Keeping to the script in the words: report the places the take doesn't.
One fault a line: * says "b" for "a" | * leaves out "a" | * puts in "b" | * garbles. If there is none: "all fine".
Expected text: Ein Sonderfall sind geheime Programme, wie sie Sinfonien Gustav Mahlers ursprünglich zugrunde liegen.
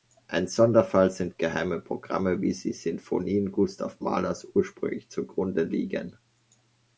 all fine